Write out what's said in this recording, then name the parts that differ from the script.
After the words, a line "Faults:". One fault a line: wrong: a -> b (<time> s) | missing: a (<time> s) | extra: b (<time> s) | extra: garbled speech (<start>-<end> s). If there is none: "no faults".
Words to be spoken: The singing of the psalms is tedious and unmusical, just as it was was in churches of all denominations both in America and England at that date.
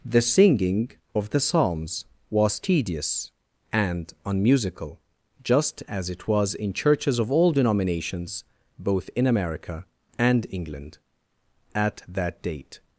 The singing of the psalms was tedious and unmusical, just as it was in churches of all denominations both in America and England at that date.
Faults:
wrong: is -> was (2.3 s)
missing: was (6.5 s)